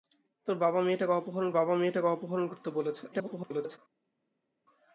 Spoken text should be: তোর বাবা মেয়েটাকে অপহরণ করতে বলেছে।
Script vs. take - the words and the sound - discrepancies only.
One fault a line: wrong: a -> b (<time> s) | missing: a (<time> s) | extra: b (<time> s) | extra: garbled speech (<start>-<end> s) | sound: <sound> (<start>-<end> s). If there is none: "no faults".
extra: বাবা মেয়েটাকে অপহরণ (1.5 s)
extra: garbled speech (3.1-3.8 s)